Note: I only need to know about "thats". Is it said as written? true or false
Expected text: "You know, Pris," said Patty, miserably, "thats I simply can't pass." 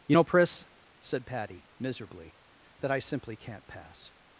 false